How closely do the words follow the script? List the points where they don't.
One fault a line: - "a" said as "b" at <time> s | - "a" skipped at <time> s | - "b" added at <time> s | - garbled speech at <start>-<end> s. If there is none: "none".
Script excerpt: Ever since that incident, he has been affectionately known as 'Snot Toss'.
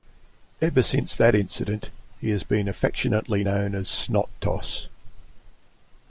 none